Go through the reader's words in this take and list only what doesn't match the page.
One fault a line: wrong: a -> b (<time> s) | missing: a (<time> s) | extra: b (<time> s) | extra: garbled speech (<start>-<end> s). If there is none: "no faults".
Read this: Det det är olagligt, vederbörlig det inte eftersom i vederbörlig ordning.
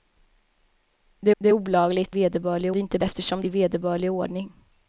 no faults